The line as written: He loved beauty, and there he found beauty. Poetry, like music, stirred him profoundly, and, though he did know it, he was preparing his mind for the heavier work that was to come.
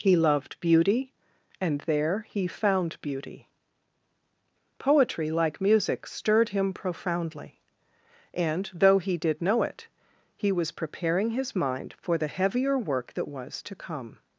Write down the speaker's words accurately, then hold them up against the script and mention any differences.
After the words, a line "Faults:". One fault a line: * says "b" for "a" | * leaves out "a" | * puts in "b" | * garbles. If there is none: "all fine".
He loved beauty, and there he found beauty. Poetry, like music, stirred him profoundly, and, though he did know it, he was preparing his mind for the heavier work that was to come.
Faults:
all fine